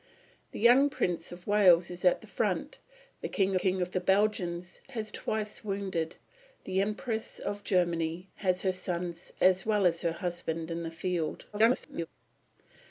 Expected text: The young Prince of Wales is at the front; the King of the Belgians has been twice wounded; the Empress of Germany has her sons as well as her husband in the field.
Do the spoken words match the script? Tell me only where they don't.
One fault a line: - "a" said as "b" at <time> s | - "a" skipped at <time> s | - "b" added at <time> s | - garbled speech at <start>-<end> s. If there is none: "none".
- "King" added at 3.5 s
- "been" skipped at 5.1 s
- garbled speech at 11.5-12.1 s